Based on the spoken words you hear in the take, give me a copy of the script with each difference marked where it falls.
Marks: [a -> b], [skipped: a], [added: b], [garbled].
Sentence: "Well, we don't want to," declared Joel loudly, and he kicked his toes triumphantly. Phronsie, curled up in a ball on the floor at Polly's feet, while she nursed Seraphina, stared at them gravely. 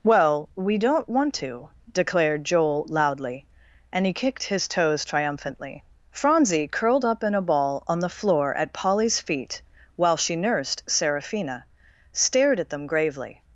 "Well, we don't want to," declared Joel loudly, and he kicked his toes triumphantly. Phronsie, curled up in a ball on the floor at Polly's feet, while she nursed Seraphina, stared at them gravely.